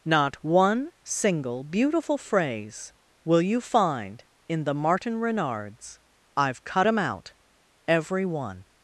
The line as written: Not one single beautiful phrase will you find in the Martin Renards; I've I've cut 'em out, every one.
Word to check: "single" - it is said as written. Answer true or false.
true